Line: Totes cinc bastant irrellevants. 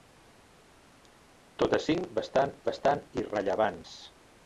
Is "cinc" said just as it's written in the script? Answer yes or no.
yes